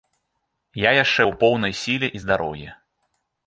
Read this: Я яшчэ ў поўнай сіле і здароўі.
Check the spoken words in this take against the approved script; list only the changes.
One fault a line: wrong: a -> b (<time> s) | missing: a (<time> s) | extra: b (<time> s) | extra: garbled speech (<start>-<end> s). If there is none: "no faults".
no faults